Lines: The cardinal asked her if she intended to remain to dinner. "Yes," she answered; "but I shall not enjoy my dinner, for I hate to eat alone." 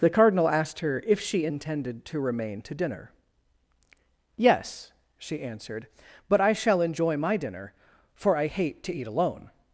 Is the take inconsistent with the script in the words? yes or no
yes